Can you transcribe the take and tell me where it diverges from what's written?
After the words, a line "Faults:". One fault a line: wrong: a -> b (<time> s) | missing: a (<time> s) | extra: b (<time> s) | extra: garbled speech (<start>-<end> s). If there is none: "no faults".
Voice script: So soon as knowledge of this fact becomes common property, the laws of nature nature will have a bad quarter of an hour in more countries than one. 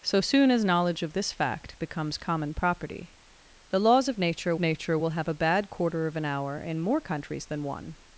So soon as knowledge of this fact becomes common property, the laws of nature nature will have a bad quarter of an hour in more countries than one.
Faults:
no faults